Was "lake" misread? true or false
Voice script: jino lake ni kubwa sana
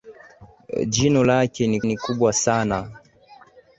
false